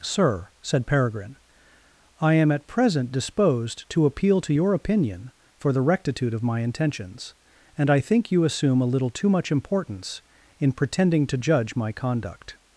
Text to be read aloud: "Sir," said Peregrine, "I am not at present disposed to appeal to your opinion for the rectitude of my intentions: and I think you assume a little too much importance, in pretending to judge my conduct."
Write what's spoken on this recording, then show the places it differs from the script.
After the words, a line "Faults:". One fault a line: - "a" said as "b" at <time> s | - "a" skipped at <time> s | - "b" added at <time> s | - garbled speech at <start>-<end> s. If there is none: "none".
"Sir," said Peregrine, "I am at present disposed to appeal to your opinion for the rectitude of my intentions: and I think you assume a little too much importance, in pretending to judge my conduct."
Faults:
- "not" skipped at 2.5 s